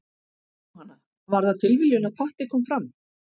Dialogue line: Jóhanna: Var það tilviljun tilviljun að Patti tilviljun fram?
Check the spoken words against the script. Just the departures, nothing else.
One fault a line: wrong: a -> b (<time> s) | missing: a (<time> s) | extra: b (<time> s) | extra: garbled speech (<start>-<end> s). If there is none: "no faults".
missing: tilviljun (2.1 s)
wrong: tilviljun -> kom (2.6 s)